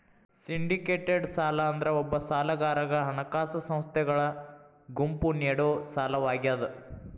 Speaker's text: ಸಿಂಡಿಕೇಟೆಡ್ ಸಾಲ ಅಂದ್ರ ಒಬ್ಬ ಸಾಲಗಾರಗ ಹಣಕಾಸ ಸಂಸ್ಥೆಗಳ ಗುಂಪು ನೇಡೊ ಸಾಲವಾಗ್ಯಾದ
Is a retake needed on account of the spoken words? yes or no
no